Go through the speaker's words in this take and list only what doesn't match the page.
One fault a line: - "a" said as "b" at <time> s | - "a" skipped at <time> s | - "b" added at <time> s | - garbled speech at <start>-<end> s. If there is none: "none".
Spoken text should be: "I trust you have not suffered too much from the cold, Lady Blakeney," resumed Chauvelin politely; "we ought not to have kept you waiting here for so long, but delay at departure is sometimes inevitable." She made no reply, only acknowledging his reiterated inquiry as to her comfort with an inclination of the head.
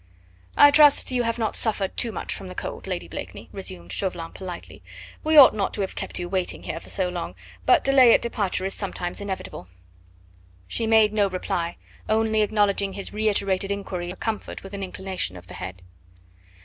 - "as to" skipped at 14.1 s